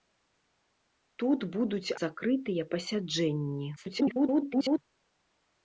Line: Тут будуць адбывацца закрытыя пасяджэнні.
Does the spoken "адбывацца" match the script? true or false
false